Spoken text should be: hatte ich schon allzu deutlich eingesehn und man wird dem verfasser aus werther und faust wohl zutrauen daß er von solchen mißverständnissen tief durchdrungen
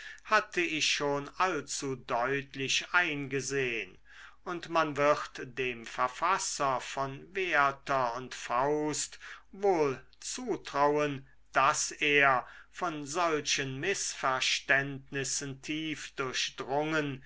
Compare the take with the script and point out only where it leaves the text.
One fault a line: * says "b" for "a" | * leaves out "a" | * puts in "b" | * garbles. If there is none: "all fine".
* says "von" for "aus"